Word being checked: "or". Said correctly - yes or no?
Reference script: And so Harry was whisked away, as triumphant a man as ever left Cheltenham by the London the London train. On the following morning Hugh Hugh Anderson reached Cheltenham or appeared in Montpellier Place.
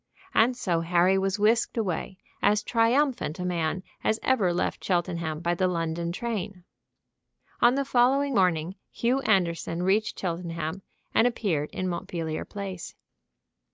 no